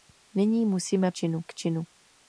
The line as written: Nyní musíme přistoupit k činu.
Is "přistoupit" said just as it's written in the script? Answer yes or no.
no